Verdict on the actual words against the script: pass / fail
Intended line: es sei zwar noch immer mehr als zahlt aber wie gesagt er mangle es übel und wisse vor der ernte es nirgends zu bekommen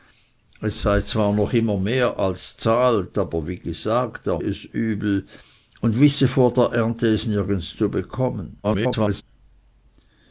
fail